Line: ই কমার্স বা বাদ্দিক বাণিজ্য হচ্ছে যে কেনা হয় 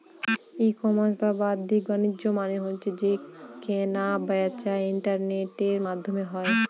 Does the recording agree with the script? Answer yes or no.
no